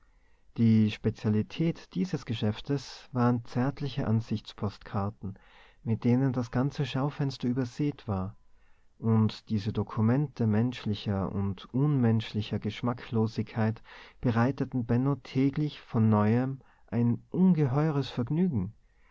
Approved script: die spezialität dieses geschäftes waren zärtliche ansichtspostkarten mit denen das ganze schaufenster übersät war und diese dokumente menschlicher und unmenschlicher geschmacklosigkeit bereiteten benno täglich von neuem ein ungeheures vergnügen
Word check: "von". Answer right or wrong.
right